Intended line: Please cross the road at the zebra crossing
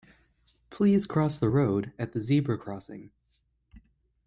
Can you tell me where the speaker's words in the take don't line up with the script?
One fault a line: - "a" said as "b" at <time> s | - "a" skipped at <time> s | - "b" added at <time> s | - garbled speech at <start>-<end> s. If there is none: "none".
none